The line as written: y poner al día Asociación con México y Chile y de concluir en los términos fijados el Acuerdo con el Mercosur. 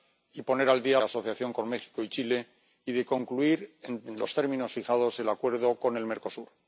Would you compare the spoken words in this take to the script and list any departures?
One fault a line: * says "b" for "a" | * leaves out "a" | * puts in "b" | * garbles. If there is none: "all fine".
all fine